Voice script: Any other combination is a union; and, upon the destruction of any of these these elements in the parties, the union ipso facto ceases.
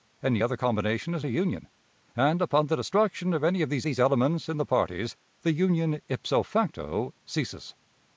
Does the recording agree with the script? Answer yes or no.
yes